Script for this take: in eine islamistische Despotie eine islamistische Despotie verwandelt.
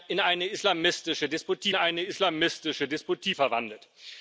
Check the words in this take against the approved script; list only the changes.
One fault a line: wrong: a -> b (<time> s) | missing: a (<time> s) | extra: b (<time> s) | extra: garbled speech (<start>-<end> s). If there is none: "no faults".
no faults